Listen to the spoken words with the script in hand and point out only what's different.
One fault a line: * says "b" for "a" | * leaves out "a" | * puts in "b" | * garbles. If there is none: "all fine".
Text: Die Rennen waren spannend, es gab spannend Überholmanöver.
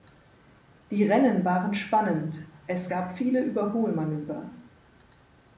* says "viele" for "spannend"